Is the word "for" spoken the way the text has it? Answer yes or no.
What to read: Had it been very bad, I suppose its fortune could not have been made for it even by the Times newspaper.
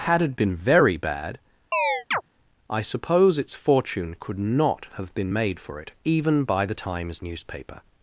yes